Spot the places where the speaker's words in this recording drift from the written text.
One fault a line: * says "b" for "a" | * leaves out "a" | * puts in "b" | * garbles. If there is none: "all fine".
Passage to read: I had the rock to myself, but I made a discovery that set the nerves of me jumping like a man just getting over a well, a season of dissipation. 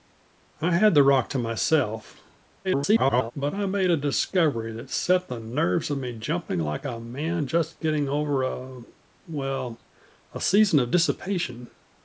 * garbles